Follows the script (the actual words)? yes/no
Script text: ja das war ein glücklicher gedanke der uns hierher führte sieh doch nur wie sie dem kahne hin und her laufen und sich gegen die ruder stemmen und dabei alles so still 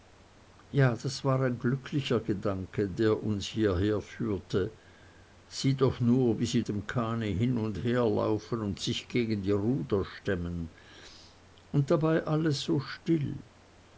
yes